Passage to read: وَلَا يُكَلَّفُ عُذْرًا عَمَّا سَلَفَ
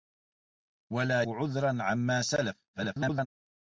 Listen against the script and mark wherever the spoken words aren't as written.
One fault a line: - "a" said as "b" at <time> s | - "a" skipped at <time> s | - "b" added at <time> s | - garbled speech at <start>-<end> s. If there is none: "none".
- "يُكَلَّفُ" skipped at 1.2 s
- garbled speech at 2.7-3.3 s